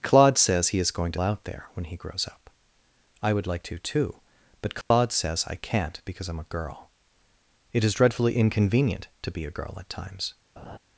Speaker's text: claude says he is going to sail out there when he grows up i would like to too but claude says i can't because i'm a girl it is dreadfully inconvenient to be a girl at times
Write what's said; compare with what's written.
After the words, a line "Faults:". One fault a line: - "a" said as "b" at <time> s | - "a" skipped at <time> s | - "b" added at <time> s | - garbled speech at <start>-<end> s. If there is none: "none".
claude says he is going to out there when he grows up i would like to too but claude says i can't because i'm a girl it is dreadfully inconvenient to be a girl at times
Faults:
- "sail" skipped at 1.2 s